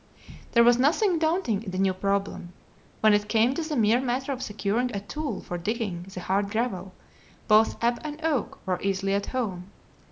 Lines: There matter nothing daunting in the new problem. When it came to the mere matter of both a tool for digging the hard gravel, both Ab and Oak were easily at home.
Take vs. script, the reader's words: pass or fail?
fail